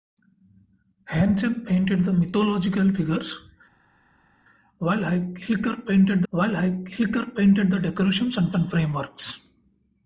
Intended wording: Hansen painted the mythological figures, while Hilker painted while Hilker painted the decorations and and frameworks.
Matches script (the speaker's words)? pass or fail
pass